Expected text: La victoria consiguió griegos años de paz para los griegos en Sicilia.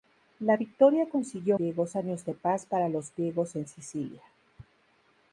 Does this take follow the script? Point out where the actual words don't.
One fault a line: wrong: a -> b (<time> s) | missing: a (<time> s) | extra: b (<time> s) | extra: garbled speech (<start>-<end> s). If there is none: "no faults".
no faults